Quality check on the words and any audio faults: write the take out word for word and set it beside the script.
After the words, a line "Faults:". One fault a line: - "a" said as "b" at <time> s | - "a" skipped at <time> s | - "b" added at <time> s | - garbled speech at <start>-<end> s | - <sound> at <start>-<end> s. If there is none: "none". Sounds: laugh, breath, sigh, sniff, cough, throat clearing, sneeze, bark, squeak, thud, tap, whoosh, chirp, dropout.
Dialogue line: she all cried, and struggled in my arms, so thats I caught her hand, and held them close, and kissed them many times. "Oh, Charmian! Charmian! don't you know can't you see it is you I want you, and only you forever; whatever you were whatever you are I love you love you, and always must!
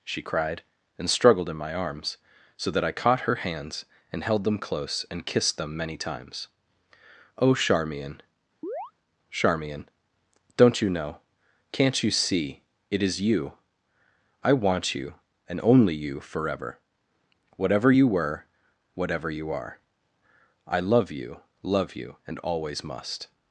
she cried, and struggled in my arms, so that I caught her hands, and held them close, and kissed them many times. "Oh, Charmian! Charmian! don't you know can't you see it is you I want you, and only you forever; whatever you were whatever you are I love you love you, and always must!
Faults:
- "all" skipped at 0.2 s
- "thats" said as "that" at 2.7 s
- "hand" said as "hands" at 3.4 s
- chirp at 8.6-8.9 s